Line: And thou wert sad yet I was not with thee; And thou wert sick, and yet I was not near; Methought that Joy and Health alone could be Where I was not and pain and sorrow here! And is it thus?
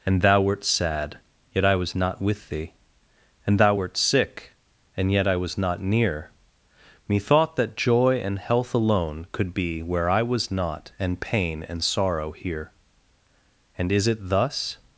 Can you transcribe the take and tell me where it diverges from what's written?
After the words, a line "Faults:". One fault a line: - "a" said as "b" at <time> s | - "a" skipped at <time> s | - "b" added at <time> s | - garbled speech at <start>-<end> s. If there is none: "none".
And thou wert sad yet I was not with thee; And thou wert sick, and yet I was not near; Methought that Joy and Health alone could be Where I was not and pain and sorrow here! And is it thus?
Faults:
none